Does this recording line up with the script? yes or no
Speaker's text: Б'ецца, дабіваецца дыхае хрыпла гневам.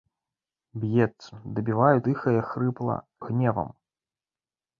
yes